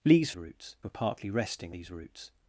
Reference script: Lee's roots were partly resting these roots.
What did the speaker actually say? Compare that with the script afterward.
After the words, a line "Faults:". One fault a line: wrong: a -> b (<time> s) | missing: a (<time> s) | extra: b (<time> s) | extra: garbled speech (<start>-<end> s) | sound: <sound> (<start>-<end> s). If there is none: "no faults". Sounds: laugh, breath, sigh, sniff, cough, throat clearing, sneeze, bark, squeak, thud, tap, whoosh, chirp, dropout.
Lee's roots were partly resting these roots.
Faults:
no faults